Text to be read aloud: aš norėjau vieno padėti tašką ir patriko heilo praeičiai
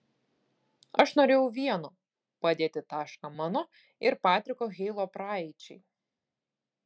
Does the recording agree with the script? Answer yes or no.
no